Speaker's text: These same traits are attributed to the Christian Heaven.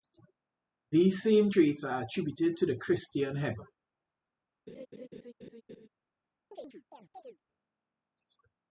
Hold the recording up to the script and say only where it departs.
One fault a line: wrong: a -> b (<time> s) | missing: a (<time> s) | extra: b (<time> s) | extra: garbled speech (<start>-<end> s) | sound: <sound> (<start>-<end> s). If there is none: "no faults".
sound: laugh (4.7-5.9 s)
sound: chirp (6.5-7.4 s)